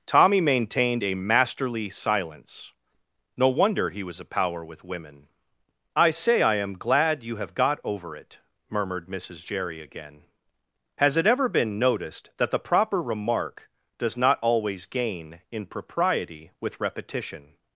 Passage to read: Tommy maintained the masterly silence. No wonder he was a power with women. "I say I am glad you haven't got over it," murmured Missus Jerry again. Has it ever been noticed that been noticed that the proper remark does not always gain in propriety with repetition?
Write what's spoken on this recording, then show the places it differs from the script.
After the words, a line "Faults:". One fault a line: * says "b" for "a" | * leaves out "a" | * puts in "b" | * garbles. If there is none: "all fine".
Tommy maintained a masterly silence. No wonder he was a power with women. "I say I am glad you have got over it," murmured Missus Jerry again. Has it ever been noticed that the proper remark does not always gain in propriety with repetition?
Faults:
* says "a" for "the"
* says "have" for "haven't"
* leaves out "been noticed that"